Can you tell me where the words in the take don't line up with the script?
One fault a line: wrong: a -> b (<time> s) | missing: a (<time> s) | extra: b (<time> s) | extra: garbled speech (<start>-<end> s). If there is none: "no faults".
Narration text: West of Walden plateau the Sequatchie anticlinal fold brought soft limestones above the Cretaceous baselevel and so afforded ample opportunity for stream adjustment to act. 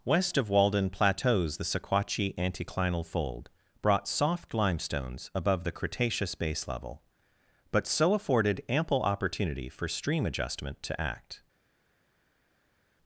wrong: plateau -> plateaus (0.9 s)
wrong: and -> but (7.7 s)